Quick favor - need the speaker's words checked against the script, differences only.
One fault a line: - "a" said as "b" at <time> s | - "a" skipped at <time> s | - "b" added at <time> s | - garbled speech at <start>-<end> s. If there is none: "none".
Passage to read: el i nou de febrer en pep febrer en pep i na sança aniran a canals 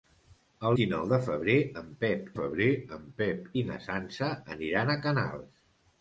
none